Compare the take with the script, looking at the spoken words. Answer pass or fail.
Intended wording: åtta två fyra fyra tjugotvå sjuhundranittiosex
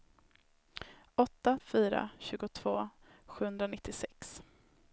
fail